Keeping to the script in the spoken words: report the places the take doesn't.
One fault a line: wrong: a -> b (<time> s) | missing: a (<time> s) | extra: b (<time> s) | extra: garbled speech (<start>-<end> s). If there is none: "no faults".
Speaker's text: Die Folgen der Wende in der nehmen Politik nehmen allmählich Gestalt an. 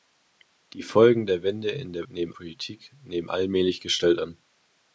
no faults